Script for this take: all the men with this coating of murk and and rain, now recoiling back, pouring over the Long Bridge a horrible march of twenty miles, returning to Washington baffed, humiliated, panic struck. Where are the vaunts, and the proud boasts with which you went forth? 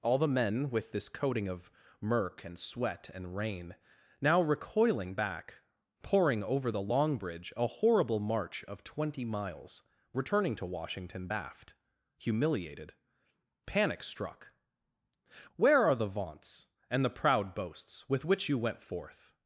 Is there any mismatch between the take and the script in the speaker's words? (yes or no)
yes